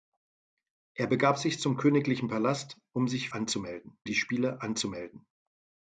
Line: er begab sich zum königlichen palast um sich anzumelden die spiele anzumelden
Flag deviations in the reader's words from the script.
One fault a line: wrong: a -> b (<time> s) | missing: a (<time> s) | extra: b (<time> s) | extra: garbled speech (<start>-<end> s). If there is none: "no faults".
no faults